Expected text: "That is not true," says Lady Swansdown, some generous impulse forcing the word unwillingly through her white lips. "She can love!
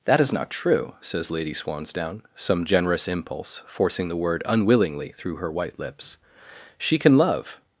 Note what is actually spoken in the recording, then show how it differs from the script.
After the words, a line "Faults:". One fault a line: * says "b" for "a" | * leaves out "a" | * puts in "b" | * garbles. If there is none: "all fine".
"That is not true," says Lady Swansdown, some generous impulse forcing the word unwillingly through her white lips. "She can love!
Faults:
all fine